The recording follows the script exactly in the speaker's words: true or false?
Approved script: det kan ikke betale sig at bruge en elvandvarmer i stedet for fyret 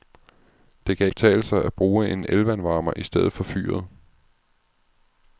false